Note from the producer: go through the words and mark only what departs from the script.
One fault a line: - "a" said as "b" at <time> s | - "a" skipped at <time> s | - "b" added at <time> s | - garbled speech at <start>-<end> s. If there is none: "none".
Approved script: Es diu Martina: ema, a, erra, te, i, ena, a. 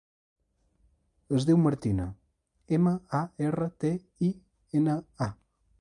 none